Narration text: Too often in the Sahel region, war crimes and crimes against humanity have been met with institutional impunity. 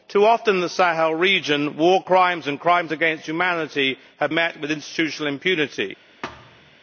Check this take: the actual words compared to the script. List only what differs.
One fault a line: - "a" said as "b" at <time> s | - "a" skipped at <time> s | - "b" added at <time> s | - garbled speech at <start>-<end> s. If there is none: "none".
- "been" skipped at 4.3 s